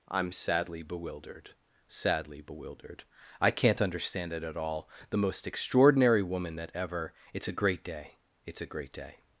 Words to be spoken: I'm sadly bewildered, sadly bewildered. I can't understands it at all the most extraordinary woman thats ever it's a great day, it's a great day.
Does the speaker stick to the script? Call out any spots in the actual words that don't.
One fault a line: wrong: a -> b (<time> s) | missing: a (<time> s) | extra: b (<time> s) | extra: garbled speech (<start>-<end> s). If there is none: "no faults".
wrong: understands -> understand (3.8 s)
wrong: thats -> that (6.6 s)